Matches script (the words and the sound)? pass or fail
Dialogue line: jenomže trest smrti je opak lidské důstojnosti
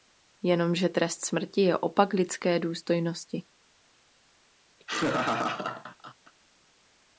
fail